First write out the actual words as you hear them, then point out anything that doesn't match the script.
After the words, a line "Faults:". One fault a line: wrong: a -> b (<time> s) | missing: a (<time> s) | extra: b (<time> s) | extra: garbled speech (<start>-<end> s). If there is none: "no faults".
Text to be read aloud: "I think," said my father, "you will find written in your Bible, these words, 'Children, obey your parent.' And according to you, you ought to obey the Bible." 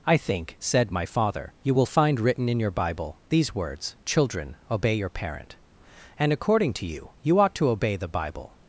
"I think," said my father, "you will find written in your Bible, these words, 'Children, obey your parent.' And according to you, you ought to obey the Bible."
Faults:
no faults